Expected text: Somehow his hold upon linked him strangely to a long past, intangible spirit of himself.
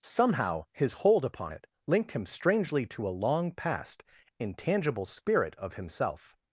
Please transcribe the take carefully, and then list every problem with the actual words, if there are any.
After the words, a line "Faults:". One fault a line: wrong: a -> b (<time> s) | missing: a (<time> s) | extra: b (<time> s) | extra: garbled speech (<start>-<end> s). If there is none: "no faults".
Somehow his hold upon it linked him strangely to a long past, intangible spirit of himself.
Faults:
extra: it (1.5 s)